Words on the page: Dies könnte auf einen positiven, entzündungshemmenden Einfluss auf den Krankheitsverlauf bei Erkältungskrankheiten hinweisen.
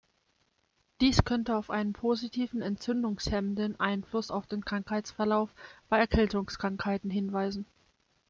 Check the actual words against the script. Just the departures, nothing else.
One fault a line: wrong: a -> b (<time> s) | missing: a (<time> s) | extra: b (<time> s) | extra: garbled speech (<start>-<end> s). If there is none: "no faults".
no faults